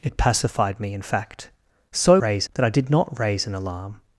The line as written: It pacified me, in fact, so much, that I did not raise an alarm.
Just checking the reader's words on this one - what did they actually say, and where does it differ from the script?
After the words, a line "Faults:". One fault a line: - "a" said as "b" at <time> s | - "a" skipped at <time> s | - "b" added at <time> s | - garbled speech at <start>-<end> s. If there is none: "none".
It pacified me, in fact, so raise, that I did not raise an alarm.
Faults:
- "much" said as "raise" at 2.2 s